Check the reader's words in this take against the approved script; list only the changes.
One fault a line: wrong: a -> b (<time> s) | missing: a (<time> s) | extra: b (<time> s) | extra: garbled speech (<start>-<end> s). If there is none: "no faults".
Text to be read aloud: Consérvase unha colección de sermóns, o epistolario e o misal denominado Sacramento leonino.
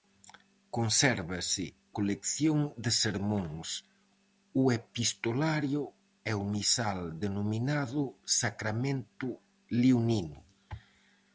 missing: unha (1.6 s)